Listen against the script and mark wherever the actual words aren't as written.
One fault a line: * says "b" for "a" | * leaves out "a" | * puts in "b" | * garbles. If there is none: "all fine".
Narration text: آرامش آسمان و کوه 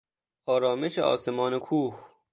all fine